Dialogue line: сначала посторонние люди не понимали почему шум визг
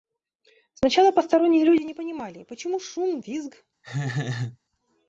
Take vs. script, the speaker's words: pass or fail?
pass